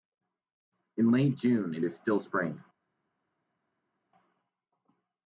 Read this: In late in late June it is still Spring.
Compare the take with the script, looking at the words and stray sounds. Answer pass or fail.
fail